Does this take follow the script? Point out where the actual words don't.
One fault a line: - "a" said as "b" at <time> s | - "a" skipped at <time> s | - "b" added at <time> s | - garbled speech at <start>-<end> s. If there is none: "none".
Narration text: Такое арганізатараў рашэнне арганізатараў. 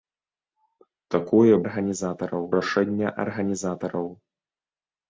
none